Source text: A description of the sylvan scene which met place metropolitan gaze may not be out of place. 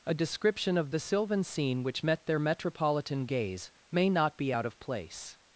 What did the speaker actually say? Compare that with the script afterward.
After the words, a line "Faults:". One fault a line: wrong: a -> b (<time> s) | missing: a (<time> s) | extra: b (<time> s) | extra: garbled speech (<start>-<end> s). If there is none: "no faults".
A description of the sylvan scene which met their metropolitan gaze may not be out of place.
Faults:
wrong: place -> their (2.3 s)